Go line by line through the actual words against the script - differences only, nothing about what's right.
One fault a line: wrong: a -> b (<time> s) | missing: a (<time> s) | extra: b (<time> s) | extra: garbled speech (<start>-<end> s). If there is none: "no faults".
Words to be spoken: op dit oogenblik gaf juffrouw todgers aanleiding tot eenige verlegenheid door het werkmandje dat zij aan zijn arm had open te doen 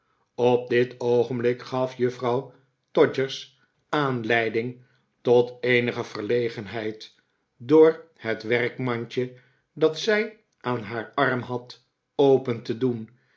wrong: zijn -> haar (10.8 s)